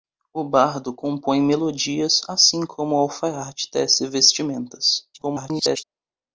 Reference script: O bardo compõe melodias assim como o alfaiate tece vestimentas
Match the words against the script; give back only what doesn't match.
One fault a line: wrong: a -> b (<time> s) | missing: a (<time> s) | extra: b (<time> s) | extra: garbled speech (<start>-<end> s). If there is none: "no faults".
extra: garbled speech (5.1-5.8 s)